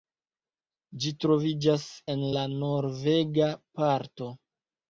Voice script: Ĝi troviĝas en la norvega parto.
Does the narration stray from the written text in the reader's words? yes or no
no